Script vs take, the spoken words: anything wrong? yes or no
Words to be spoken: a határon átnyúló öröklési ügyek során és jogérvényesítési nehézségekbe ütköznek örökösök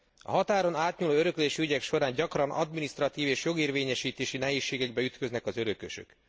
yes